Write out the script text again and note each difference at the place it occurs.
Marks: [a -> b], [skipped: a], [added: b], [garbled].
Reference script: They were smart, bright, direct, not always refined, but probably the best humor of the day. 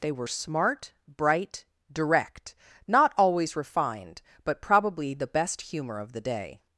They were smart, bright, direct, not always refined, but probably the best humor of the day.